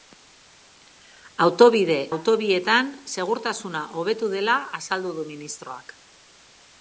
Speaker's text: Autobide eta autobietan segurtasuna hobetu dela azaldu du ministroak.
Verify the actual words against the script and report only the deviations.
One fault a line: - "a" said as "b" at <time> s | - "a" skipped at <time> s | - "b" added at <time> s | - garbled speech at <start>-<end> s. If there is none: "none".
- "eta" skipped at 2.0 s